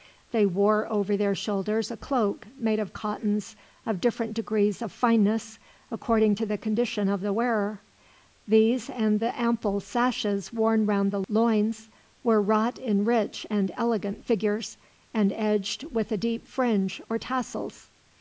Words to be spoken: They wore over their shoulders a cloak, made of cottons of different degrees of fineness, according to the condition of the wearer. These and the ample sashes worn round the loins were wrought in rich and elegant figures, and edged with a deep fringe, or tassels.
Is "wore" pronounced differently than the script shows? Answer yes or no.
no